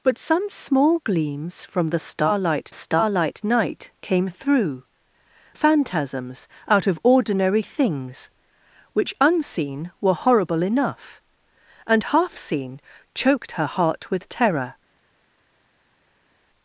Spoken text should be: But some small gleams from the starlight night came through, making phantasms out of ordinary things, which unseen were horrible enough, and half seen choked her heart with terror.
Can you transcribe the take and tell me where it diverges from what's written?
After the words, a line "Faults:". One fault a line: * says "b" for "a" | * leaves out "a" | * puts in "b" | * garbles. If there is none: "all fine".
But some small gleams from the starlight starlight night came through, phantasms out of ordinary things, which unseen were horrible enough, and half seen choked her heart with terror.
Faults:
* puts in "starlight"
* leaves out "making"